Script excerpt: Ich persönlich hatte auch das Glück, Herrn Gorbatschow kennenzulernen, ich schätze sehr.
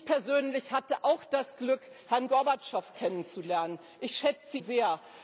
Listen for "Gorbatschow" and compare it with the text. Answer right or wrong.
right